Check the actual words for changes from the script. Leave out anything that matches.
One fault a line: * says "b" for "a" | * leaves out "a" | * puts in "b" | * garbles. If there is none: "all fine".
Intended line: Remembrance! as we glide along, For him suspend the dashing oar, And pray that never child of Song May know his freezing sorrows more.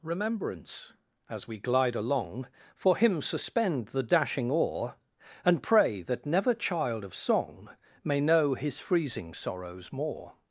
all fine